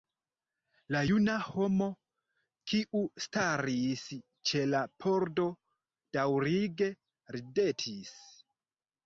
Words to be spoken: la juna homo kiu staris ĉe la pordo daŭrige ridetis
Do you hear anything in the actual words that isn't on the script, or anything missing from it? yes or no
no